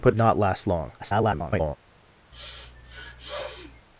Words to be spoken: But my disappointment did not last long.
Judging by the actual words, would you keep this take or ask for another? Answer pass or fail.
fail